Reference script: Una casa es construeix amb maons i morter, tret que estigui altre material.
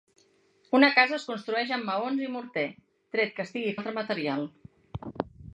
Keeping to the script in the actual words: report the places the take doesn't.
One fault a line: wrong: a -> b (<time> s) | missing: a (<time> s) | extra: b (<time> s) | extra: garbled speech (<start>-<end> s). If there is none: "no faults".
no faults